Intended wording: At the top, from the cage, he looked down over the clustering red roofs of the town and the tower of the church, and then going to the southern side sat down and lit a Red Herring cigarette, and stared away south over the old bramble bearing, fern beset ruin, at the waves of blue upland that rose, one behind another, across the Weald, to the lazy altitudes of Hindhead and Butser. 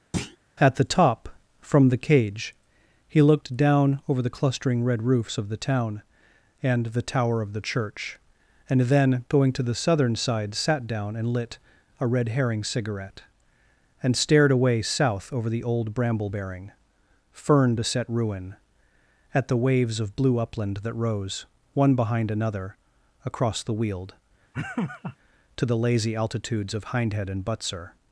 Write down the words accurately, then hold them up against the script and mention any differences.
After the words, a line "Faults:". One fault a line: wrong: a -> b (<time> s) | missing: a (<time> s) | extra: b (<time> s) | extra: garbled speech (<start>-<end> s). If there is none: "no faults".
At the top, from the cage, he looked down over the clustering red roofs of the town and the tower of the church, and then going to the southern side sat down and lit a Red Herring cigarette, and stared away south over the old bramble bearing, fern beset ruin, at the waves of blue upland that rose, one behind another, across the Weald, to the lazy altitudes of Hindhead and Butser.
Faults:
no faults